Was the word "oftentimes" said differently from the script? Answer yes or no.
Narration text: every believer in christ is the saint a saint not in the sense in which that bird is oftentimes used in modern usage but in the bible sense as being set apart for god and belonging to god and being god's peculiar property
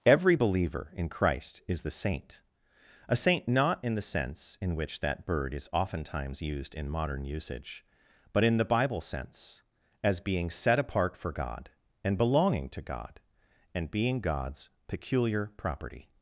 no